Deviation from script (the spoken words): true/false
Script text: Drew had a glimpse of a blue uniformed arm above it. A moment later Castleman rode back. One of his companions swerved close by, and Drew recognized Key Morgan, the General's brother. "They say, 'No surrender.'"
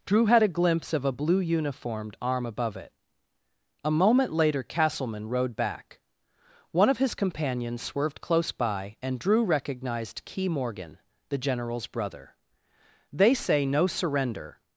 false